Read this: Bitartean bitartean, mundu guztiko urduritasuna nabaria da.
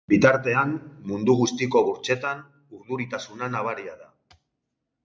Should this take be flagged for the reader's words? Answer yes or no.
yes